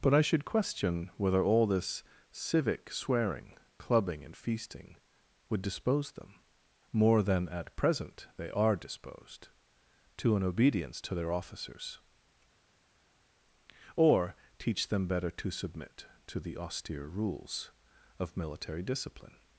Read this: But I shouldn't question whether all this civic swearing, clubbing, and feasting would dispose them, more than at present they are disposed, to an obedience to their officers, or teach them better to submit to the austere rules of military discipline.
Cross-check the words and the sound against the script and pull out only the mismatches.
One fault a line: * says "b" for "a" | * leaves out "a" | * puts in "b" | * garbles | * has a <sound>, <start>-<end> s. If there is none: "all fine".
* says "should" for "shouldn't"